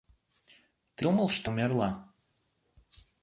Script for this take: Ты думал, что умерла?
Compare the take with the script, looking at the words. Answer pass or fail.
pass